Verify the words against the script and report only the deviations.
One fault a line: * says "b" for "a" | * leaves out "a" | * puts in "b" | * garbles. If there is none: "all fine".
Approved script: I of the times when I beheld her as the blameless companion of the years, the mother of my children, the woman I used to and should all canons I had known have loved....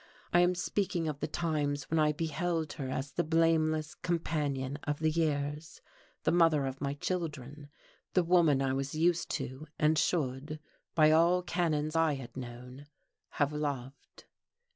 * puts in "am speaking"
* puts in "was"
* puts in "by"